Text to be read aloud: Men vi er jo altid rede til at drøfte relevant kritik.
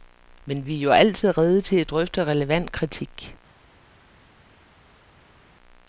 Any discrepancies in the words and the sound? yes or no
no